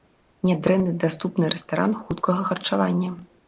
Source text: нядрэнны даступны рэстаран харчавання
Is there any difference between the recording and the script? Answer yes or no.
yes